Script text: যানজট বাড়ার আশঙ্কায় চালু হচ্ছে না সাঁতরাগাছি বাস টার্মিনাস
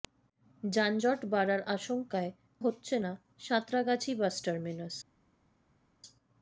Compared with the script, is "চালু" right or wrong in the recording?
wrong